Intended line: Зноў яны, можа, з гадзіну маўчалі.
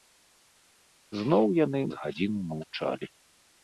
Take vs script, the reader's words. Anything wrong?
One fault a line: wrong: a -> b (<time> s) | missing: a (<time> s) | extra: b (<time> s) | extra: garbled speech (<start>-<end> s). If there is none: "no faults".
missing: можа (1.8 s)